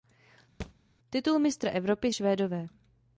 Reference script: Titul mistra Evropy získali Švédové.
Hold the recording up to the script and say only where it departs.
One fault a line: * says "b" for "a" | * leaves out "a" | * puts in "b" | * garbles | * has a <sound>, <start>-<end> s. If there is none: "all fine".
* has a thud, 0.6-0.7 s
* leaves out "získali"